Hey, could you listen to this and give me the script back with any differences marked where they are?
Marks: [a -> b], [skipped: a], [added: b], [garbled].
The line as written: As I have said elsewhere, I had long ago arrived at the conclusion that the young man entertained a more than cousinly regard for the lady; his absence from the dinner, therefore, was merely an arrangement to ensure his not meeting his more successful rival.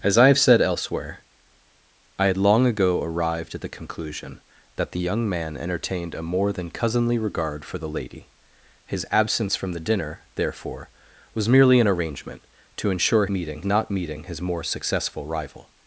As I have said elsewhere, I had long ago arrived at the conclusion that the young man entertained a more than cousinly regard for the lady; his absence from the dinner, therefore, was merely an arrangement to ensure [his -> meeting] not meeting his more successful rival.